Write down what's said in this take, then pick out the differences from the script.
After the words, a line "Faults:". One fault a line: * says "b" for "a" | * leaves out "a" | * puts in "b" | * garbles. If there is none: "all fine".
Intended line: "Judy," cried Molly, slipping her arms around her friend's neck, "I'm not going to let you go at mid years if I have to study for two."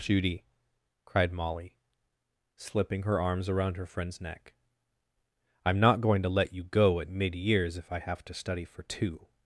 "Judy," cried Molly, slipping her arms around her friend's neck, "I'm not going to let you go at mid years if I have to study for two."
Faults:
all fine